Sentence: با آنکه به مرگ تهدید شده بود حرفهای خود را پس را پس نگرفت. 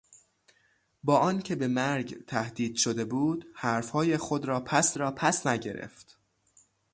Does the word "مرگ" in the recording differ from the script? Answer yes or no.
no